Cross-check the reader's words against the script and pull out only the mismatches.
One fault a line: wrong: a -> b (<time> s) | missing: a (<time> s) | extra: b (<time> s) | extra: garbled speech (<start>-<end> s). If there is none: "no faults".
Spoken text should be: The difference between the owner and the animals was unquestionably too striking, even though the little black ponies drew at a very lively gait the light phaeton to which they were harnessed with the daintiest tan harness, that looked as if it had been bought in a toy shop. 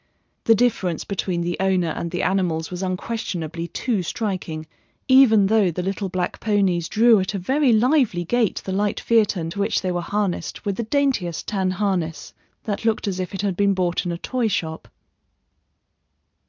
no faults